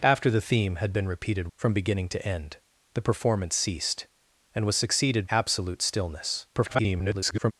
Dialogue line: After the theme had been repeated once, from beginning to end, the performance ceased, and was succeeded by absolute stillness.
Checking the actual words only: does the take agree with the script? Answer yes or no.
no